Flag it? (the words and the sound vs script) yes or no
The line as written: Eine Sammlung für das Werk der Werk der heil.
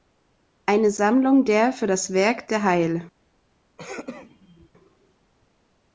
yes